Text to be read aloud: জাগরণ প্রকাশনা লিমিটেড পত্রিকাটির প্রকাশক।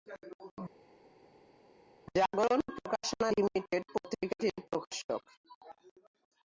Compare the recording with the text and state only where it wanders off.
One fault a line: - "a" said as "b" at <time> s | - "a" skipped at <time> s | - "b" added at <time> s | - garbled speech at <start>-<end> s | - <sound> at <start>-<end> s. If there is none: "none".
none